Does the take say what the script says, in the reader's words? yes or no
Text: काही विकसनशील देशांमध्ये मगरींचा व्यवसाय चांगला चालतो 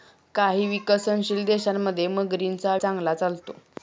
no